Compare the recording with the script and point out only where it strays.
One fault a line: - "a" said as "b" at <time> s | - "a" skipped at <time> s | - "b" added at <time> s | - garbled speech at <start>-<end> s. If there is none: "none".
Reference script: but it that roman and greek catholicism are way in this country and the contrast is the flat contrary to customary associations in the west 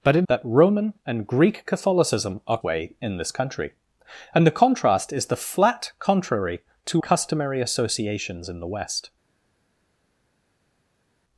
none